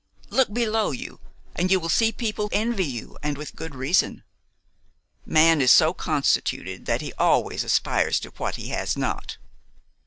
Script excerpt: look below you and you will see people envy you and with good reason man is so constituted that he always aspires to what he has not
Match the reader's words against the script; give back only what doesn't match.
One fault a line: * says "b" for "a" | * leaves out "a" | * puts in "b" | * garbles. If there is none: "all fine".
all fine